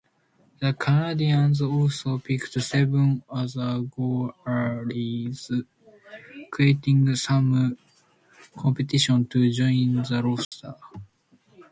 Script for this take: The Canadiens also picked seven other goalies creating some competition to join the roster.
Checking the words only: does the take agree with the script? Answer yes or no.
yes